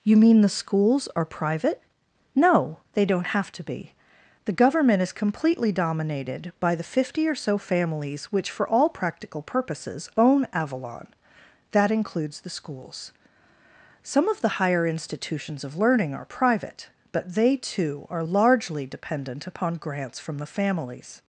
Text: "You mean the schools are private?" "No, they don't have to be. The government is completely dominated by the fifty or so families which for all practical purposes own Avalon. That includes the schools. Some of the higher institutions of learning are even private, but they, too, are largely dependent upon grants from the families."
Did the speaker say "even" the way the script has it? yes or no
no